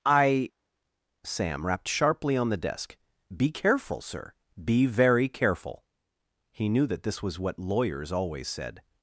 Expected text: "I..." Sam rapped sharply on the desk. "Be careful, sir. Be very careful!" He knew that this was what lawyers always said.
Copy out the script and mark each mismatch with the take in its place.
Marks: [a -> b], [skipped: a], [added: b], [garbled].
"I..." Sam rapped sharply on the desk. "Be careful, sir. Be very careful!" He knew that this was what lawyers always said.